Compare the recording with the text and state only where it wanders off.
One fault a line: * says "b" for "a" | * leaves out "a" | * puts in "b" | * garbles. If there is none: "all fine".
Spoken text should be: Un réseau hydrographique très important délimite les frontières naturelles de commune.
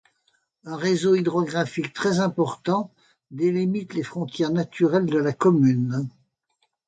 * puts in "la"